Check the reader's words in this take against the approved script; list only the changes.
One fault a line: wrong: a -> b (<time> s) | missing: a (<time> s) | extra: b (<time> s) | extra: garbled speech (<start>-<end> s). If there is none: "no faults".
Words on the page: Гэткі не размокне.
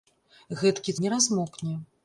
no faults